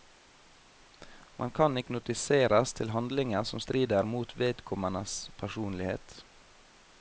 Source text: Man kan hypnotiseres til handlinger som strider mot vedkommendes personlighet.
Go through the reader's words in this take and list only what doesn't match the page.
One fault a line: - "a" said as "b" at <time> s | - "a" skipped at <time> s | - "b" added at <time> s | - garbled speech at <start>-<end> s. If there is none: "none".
none